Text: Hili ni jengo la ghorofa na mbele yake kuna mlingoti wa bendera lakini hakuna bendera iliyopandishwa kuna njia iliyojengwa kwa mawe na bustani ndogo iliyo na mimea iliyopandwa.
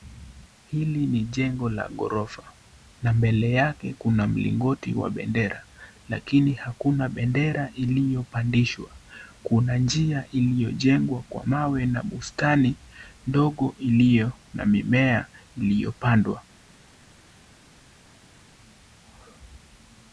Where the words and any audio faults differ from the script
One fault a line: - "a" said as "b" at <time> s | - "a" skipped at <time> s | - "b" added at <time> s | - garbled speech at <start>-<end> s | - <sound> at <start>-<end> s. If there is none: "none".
none